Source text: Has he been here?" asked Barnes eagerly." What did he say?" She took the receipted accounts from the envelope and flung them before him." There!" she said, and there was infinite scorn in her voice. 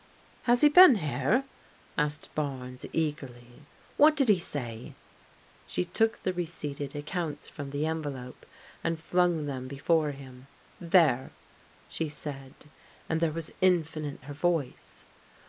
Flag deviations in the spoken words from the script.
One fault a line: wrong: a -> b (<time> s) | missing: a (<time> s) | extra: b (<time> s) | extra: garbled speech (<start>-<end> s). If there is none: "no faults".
missing: scorn in (14.2 s)